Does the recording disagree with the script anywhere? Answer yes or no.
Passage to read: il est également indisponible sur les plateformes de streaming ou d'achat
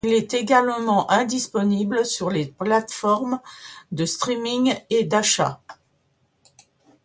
yes